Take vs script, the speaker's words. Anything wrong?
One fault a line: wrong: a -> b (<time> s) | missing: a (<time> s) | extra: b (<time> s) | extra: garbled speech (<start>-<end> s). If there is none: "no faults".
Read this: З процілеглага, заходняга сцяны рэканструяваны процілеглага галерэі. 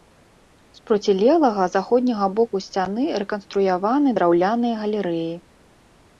extra: боку (2.4 s)
wrong: процілеглага -> драўляныя (4.2 s)